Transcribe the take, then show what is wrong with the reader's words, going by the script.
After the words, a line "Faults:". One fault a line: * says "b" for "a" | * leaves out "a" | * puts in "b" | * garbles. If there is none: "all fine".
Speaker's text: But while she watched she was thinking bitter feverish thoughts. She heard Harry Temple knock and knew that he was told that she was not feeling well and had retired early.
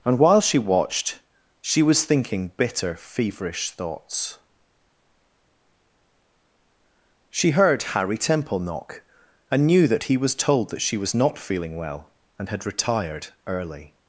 And while she watched she was thinking bitter feverish thoughts. She heard Harry Temple knock and knew that he was told that she was not feeling well and had retired early.
Faults:
* says "And" for "But"